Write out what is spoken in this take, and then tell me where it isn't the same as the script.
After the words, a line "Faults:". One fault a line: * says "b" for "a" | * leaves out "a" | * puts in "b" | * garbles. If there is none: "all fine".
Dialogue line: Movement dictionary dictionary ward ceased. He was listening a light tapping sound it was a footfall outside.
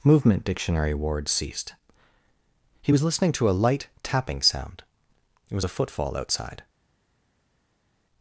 Movement dictionary ward ceased. He was listening to a light tapping sound it was a footfall outside.
Faults:
* leaves out "dictionary"
* puts in "to"